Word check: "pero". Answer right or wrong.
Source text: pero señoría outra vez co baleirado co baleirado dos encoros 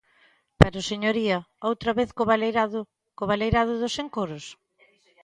right